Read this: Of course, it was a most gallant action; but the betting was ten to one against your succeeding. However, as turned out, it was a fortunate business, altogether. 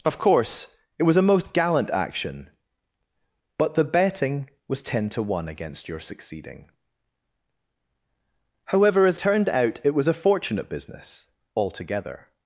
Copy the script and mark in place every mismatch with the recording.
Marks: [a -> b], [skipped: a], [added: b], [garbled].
Of course, it was a most gallant action; but the betting was ten to one against your succeeding. However, as turned out, it was a fortunate business, altogether.